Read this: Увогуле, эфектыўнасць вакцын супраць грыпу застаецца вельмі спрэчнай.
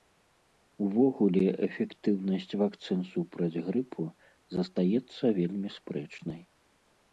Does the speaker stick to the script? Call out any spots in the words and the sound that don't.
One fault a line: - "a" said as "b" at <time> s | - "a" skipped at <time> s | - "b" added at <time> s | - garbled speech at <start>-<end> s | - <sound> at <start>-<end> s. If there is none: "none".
none